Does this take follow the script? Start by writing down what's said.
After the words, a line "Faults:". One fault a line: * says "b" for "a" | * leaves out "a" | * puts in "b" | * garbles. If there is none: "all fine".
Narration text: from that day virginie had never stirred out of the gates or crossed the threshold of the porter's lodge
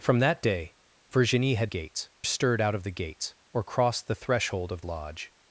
from that day virginie had gates stirred out of the gates or crossed the threshold of lodge
Faults:
* says "gates" for "never"
* leaves out "the porter's"